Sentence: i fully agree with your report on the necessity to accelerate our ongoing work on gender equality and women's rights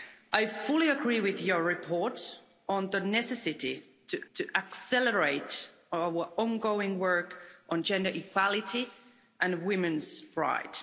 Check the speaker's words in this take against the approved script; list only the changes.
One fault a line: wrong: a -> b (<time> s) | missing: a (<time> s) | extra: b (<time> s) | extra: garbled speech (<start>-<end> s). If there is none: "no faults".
extra: to (4.3 s)